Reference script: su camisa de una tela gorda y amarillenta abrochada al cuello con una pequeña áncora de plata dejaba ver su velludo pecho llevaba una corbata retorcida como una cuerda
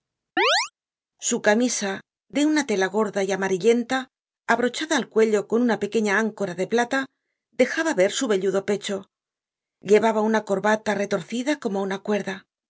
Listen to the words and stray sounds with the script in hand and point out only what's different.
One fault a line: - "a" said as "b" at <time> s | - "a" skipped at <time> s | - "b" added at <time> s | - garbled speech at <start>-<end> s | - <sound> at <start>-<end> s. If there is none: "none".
- chirp at 0.4-0.7 s